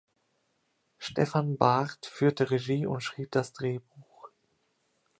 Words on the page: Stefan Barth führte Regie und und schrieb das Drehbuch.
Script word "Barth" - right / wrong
right